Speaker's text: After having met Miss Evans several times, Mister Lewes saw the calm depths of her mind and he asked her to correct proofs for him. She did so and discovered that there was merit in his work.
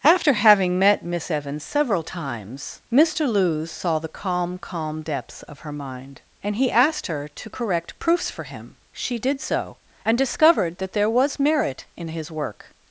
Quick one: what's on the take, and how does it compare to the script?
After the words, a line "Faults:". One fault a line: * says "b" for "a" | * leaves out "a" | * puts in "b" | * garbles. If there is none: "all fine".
After having met Miss Evans several times, Mister Lewes saw the calm calm depths of her mind and he asked her to correct proofs for him. She did so and discovered that there was merit in his work.
Faults:
* puts in "calm"